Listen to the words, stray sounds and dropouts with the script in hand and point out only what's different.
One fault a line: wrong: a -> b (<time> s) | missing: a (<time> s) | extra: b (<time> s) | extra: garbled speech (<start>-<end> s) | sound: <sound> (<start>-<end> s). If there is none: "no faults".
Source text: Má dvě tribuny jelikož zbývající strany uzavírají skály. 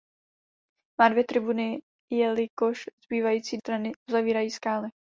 no faults